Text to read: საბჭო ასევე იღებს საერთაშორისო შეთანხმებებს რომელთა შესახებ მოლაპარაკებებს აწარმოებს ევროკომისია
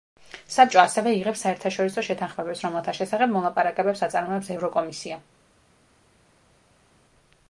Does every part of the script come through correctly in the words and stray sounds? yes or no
yes